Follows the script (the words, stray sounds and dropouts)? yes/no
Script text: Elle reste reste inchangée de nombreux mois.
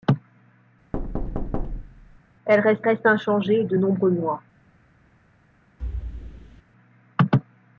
no